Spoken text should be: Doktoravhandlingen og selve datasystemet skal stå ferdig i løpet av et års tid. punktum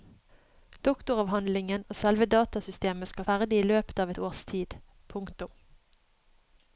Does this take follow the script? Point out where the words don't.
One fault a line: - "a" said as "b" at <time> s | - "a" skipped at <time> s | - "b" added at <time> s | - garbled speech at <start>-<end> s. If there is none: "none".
- "stå" skipped at 3.3 s